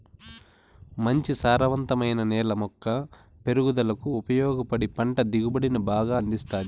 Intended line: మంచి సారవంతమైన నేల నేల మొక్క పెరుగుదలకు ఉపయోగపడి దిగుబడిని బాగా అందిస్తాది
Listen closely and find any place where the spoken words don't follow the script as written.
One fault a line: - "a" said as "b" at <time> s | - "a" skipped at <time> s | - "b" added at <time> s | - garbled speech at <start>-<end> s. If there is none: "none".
- "నేల" skipped at 2.5 s
- "పంట" added at 4.9 s